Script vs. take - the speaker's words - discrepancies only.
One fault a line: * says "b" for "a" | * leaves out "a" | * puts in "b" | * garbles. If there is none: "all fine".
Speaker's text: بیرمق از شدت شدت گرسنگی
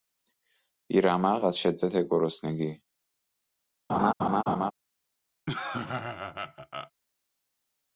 * leaves out "شدت"